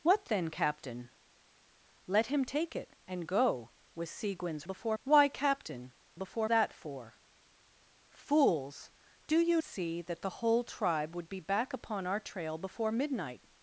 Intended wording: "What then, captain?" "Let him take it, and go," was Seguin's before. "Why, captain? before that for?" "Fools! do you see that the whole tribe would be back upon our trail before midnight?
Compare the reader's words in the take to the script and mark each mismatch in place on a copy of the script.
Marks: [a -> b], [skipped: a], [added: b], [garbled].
"What then, captain?" "Let him take it, and go," was Seguin's before. "Why, captain? before that for?" "Fools! do you see that the whole tribe would be back upon our trail before midnight?